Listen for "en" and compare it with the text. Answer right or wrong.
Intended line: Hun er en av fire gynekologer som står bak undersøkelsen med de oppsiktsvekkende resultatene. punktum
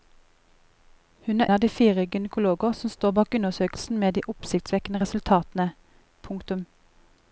wrong